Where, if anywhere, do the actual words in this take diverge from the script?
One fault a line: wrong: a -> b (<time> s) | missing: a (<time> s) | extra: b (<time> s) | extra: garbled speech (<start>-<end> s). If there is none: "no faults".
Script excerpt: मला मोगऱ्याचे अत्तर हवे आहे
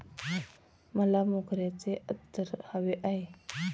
no faults